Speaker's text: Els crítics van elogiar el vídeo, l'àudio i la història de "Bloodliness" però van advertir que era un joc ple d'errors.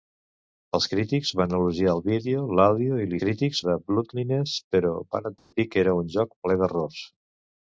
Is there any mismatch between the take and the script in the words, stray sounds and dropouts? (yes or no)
yes